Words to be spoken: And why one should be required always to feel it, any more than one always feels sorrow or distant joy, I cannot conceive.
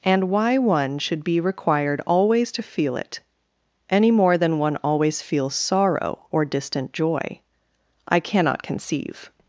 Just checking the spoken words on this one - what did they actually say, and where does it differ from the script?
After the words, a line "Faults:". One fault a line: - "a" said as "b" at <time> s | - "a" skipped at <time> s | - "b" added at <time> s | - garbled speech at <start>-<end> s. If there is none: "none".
And why one should be required always to feel it, any more than one always feels sorrow or distant joy, I cannot conceive.
Faults:
none